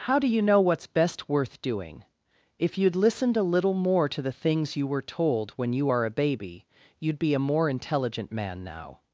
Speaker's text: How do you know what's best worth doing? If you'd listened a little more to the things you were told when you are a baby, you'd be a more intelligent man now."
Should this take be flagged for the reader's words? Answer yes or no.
no